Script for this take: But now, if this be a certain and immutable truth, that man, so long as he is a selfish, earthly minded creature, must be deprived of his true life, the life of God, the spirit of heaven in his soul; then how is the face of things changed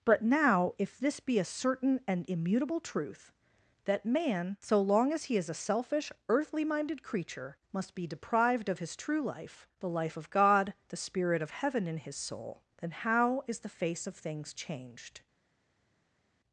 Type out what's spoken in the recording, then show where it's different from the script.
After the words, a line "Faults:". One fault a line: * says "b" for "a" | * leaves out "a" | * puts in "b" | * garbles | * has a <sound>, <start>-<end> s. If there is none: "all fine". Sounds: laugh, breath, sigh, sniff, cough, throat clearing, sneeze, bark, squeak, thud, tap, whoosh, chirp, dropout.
But now, if this be a certain and immutable truth, that man, so long as he is a selfish, earthly minded creature, must be deprived of his true life, the life of God, the spirit of heaven in his soul; then how is the face of things changed
Faults:
all fine